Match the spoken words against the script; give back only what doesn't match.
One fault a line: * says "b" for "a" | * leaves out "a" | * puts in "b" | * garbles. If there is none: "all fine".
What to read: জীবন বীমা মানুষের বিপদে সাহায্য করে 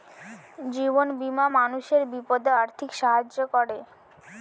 * puts in "আর্থিক"